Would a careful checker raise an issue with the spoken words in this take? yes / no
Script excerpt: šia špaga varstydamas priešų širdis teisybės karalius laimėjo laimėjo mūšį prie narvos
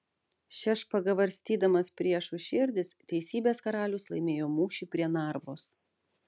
yes